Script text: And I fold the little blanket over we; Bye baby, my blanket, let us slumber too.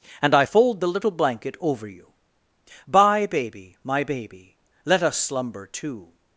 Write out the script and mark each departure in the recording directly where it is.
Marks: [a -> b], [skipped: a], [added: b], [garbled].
And I fold the little blanket over [we; -> you] Bye baby, my [blanket, -> baby] let us slumber too.